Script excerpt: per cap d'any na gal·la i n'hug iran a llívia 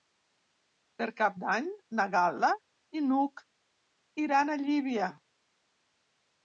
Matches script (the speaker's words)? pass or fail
pass